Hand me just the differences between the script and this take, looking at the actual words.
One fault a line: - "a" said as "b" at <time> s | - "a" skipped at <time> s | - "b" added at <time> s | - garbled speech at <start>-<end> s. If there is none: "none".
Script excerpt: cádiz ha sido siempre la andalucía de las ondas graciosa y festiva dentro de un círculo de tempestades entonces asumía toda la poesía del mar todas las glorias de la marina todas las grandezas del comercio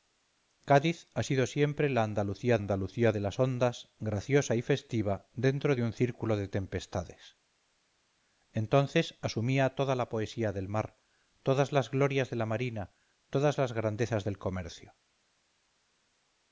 - "andalucía" added at 2.5 s